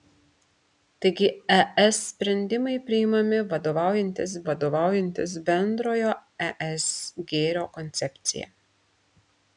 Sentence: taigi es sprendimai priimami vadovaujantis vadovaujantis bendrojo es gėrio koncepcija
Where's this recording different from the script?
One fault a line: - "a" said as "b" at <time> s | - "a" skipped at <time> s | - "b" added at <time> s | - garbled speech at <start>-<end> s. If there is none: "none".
none